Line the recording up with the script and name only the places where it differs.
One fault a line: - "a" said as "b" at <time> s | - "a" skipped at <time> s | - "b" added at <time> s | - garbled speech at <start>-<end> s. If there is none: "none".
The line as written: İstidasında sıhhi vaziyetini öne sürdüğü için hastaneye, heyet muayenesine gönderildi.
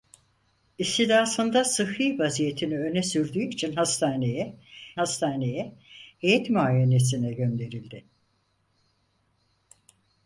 - "hastaneye" added at 5.0 s